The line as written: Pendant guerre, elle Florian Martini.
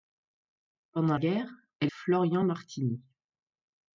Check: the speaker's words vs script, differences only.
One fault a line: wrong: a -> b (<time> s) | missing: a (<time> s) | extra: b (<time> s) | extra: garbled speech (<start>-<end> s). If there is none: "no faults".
no faults